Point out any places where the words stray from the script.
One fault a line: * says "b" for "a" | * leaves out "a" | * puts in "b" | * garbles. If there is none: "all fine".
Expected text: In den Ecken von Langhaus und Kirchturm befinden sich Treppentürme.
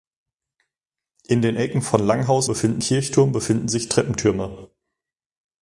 * says "befinden" for "und"